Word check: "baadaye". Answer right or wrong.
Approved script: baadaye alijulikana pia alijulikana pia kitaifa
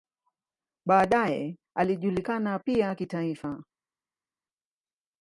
right